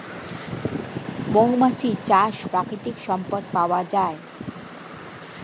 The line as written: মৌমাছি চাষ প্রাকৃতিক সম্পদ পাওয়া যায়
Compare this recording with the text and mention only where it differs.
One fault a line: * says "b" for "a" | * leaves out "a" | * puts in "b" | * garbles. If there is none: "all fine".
all fine